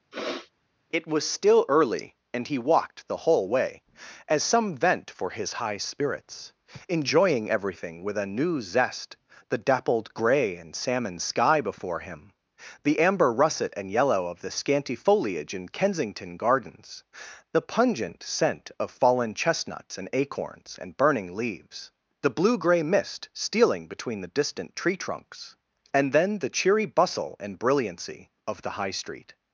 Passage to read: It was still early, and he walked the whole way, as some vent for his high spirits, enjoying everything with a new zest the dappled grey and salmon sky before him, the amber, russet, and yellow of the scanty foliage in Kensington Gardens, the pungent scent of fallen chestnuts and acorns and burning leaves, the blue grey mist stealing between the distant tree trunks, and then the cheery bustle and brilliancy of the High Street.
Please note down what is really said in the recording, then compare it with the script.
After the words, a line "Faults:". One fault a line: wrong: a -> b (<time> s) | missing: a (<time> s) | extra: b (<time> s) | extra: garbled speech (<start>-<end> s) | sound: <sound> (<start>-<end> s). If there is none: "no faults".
It was still early, and he walked the whole way, as some vent for his high spirits, enjoying everything with a new zest the dappled grey and salmon sky before him, the amber, russet, and yellow of the scanty foliage in Kensington Gardens, the pungent scent of fallen chestnuts and acorns and burning leaves, the blue grey mist stealing between the distant tree trunks, and then the cheery bustle and brilliancy of the High Street.
Faults:
sound: sniff (0.1-0.5 s)